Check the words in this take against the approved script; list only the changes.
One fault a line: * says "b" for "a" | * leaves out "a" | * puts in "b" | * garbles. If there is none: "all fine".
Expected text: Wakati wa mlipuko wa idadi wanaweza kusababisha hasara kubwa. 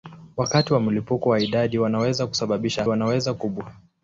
* says "wanaweza" for "hasara"